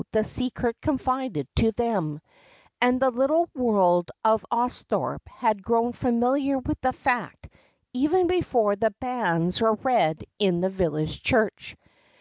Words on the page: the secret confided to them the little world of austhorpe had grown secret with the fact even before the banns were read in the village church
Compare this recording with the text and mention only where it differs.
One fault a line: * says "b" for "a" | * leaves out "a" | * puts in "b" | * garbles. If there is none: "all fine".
* puts in "and"
* says "familiar" for "secret"